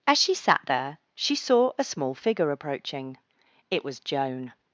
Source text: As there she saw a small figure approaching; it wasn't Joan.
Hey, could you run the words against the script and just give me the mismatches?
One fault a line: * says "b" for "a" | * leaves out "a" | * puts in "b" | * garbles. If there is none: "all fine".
* puts in "she sat"
* says "was" for "wasn't"